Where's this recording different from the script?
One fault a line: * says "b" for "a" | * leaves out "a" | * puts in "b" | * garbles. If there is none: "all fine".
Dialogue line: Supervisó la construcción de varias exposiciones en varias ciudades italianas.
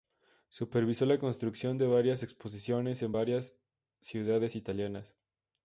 all fine